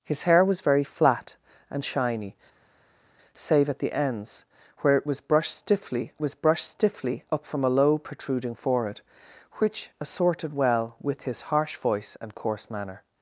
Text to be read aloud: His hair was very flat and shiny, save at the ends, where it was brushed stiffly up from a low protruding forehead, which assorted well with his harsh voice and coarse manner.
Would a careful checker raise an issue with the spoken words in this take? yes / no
yes